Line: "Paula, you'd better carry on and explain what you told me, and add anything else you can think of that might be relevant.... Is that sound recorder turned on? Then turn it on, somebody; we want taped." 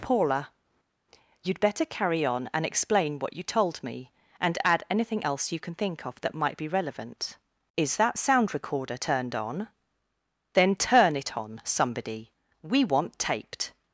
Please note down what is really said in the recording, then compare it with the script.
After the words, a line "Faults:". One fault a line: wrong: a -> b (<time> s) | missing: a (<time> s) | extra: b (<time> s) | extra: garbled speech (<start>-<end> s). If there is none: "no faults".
"Paula, you'd better carry on and explain what you told me, and add anything else you can think of that might be relevant.... Is that sound recorder turned on? Then turn it on, somebody; we want taped."
Faults:
no faults